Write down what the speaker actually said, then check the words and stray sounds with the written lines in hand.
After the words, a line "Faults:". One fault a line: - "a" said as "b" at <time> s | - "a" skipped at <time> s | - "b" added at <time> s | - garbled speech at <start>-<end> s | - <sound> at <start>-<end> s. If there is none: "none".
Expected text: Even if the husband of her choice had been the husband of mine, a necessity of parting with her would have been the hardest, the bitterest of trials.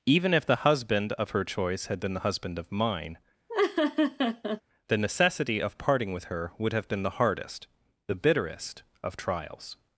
Even if the husband of her choice had been the husband of mine, the necessity of parting with her would have been the hardest, the bitterest of trials.
Faults:
- laugh at 3.5-4.6 s
- "a" said as "the" at 4.9 s